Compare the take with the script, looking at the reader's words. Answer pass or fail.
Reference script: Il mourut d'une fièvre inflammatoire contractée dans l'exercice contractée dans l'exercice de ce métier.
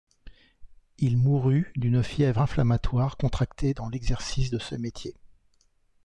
fail